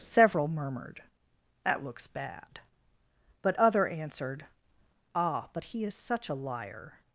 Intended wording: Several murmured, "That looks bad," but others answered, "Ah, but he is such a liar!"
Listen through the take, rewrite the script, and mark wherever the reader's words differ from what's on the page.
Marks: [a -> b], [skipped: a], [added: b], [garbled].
Several murmured, "That looks bad," but [others -> other] answered, "Ah, but he is such a liar!"